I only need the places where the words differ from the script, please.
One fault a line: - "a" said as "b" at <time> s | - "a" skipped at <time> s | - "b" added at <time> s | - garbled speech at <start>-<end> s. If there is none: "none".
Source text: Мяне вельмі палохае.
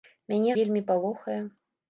none